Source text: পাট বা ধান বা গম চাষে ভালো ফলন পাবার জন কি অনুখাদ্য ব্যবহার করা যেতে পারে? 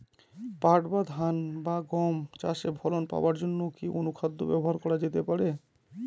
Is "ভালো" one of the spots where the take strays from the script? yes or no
yes